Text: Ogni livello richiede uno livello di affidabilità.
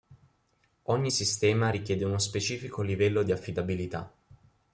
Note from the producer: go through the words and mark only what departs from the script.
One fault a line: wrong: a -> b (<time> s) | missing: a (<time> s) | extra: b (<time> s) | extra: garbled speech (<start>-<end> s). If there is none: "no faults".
wrong: livello -> sistema (1.1 s)
extra: specifico (2.2 s)